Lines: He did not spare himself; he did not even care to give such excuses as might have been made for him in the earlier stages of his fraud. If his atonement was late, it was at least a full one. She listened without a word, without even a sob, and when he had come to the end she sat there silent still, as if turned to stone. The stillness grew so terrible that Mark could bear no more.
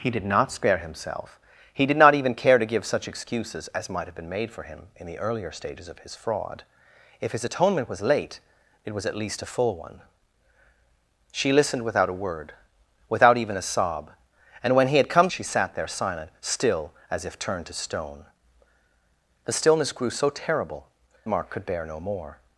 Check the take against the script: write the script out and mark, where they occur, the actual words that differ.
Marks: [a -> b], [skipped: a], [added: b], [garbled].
He did not spare himself; he did not even care to give such excuses as might have been made for him in the earlier stages of his fraud. If his atonement was late, it was at least a full one. She listened without a word, without even a sob, and when he had come [skipped: to the end] she sat there silent still, as if turned to stone. The stillness grew so terrible [skipped: that] Mark could bear no more.